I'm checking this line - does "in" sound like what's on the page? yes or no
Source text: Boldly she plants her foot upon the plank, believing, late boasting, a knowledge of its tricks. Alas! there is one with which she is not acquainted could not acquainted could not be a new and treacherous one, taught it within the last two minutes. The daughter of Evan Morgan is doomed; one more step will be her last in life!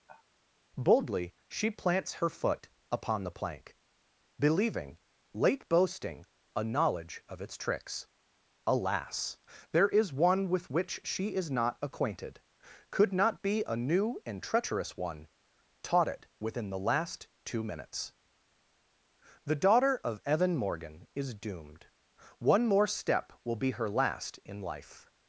yes